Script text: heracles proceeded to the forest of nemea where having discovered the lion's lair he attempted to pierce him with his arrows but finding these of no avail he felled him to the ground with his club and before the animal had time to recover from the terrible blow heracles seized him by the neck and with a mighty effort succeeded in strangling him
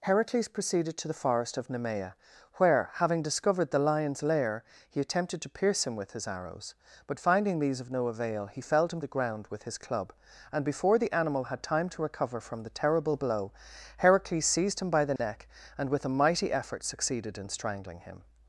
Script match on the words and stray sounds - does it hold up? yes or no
no